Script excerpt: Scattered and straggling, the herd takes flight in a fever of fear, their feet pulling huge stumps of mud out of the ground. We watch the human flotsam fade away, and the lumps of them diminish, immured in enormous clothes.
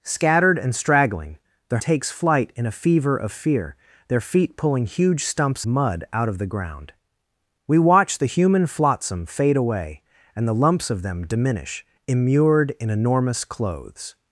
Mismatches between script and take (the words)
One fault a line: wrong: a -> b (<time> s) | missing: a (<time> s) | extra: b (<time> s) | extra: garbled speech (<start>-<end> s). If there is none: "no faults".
missing: herd (1.8 s)
missing: of (5.6 s)